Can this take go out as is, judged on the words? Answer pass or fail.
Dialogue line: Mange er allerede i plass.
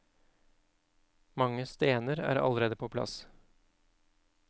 fail